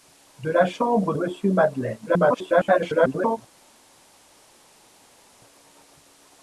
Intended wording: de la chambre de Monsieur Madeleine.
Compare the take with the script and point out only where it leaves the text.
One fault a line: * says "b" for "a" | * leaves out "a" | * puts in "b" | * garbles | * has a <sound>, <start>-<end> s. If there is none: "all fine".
* leaves out "de"
* garbles